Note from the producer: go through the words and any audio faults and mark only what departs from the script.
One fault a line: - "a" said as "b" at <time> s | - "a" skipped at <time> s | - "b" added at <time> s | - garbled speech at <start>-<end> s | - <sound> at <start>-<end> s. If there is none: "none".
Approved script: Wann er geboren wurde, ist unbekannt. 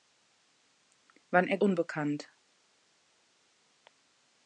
- "geboren wurde ist" skipped at 1.6 s